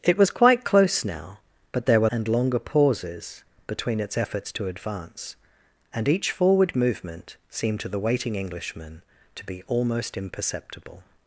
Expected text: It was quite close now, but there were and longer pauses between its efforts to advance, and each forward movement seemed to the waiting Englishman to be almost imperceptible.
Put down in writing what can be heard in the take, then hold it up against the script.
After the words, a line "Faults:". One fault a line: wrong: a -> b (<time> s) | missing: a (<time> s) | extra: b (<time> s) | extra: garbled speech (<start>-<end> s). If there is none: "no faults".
It was quite close now, but there were and longer pauses between its efforts to advance, and each forward movement seemed to the waiting Englishman to be almost imperceptible.
Faults:
no faults